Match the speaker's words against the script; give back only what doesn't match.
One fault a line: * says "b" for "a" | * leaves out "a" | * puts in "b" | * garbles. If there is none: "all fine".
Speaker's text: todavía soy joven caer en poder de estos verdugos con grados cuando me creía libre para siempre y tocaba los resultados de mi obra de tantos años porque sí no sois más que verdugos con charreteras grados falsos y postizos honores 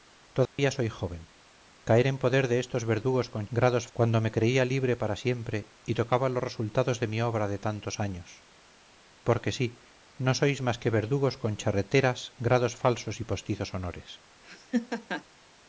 all fine